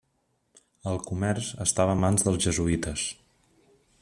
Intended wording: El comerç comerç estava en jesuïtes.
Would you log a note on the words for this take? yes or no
yes